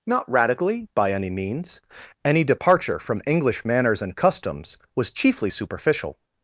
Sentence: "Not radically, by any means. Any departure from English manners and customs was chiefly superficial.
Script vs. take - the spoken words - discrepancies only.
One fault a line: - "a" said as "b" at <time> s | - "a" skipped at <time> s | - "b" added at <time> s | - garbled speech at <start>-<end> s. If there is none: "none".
none